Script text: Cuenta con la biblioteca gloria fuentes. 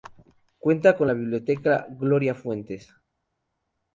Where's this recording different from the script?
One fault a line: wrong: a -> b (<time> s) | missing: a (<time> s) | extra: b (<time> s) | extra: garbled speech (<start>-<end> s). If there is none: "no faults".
no faults